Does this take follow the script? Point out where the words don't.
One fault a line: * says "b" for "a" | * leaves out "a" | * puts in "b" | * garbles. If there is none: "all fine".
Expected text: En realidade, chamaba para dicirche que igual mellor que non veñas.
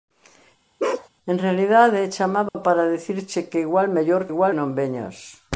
* says "igual" for "que"